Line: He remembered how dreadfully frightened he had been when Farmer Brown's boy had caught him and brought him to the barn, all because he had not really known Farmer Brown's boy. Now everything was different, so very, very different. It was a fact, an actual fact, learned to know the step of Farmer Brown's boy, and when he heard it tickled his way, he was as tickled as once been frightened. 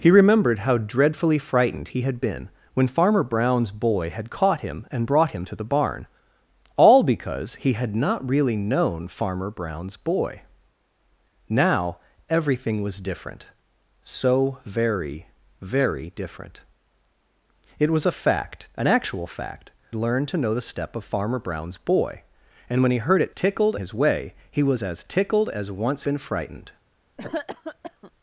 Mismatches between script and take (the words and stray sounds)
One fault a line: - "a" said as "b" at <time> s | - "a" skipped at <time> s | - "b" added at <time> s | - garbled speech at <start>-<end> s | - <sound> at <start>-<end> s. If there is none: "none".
- cough at 27.2-28.1 s